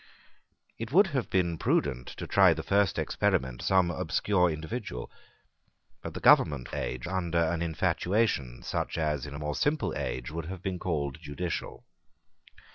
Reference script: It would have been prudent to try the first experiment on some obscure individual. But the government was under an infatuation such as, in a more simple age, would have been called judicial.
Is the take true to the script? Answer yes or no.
no